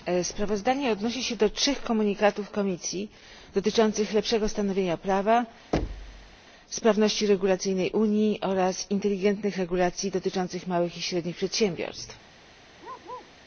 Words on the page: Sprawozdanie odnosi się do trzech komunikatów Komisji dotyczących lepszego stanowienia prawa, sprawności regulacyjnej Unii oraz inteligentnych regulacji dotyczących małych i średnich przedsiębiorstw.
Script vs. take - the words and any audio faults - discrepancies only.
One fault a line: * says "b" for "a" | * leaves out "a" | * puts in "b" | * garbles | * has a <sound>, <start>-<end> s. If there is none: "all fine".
* has a thud, 5.7-6.4 s
* has a bark, 12.8-13.3 s